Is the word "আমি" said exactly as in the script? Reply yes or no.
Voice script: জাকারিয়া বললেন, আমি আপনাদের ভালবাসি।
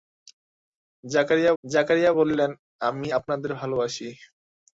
yes